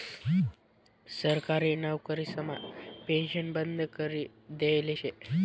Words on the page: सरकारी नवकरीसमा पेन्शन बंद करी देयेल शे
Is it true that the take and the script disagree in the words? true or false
false